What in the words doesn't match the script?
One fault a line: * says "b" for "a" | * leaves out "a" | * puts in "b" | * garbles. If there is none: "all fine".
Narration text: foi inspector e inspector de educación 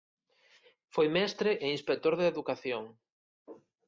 * says "mestre" for "inspector"